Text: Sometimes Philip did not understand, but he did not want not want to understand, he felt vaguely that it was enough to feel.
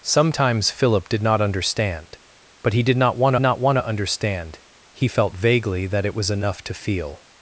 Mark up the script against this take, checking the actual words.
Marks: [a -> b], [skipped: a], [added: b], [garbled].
Sometimes Philip did not understand, but he did not want not want to understand, he felt vaguely that it was enough to feel.